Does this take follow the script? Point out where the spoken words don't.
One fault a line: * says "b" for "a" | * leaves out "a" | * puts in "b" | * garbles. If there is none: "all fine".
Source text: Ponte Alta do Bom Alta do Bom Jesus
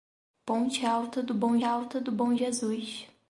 all fine